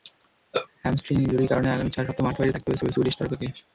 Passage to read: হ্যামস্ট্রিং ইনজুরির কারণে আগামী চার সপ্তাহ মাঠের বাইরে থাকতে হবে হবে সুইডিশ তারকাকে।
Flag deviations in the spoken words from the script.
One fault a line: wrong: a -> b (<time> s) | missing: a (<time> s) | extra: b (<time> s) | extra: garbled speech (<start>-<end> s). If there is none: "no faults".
no faults